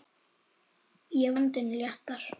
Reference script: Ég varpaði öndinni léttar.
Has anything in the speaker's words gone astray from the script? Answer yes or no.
yes